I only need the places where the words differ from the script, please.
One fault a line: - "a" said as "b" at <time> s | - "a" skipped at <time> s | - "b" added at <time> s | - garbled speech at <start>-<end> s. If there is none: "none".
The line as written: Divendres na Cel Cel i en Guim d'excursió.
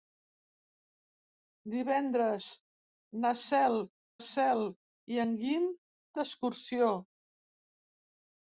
none